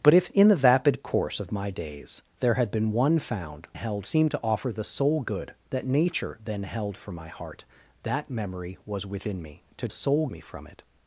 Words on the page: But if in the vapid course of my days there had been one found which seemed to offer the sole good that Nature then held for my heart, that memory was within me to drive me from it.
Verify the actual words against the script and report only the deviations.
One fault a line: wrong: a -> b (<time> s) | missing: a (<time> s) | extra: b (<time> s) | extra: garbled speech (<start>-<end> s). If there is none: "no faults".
wrong: which -> held (3.7 s)
wrong: drive -> sole (9.9 s)